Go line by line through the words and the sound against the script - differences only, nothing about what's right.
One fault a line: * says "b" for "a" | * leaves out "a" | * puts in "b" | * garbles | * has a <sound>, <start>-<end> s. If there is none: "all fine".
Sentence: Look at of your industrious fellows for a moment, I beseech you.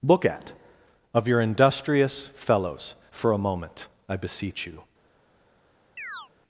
* has a chirp, 6.0-6.3 s